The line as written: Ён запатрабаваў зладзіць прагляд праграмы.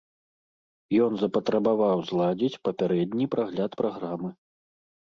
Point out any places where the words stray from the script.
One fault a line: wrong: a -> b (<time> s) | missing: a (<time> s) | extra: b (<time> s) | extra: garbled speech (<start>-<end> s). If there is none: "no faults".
extra: папярэдні (2.7 s)